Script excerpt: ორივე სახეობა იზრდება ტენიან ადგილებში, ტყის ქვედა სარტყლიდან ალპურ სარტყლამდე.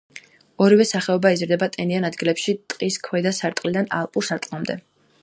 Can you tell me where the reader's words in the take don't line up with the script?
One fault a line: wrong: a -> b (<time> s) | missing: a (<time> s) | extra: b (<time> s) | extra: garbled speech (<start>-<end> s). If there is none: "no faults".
no faults